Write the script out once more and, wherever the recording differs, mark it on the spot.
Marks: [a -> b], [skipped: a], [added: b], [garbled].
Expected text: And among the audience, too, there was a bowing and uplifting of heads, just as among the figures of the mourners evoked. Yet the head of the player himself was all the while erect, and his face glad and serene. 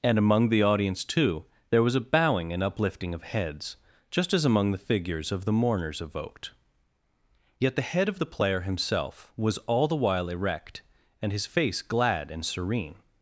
And among the audience, too, there was a bowing and uplifting of heads, just as among the figures of the mourners evoked. Yet the head of the player himself was all the while erect, and his face glad and serene.